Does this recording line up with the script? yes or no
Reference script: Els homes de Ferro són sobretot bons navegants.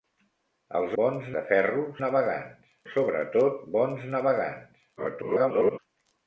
no